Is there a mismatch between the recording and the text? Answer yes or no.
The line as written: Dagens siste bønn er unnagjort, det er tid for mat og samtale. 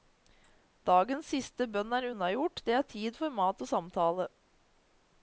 no